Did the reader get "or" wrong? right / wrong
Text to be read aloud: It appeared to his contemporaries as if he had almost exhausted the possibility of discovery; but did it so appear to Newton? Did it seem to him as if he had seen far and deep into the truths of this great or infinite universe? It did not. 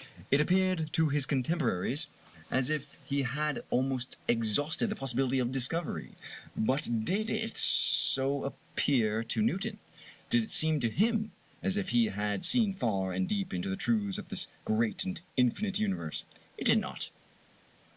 wrong